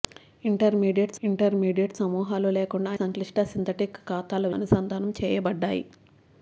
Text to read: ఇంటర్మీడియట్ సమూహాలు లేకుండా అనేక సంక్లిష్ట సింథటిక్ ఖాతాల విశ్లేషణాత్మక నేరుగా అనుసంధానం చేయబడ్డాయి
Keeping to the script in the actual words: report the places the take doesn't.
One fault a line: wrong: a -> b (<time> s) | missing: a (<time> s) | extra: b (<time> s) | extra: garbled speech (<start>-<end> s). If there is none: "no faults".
extra: ఇంటర్మీడియట్ (1.2 s)
missing: అనేక (2.9 s)
missing: విశ్లేషణాత్మక నేరుగా (4.5 s)